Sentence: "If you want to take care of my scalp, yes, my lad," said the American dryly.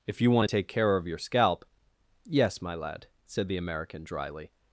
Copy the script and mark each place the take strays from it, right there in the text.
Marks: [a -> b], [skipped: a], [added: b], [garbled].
"If you want to take care of [my -> your] scalp, yes, my lad," said the American dryly.